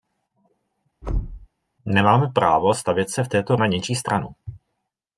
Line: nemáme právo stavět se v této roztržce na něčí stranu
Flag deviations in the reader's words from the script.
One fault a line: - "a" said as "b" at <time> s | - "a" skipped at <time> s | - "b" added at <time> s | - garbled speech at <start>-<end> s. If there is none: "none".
- "roztržce" skipped at 3.6 s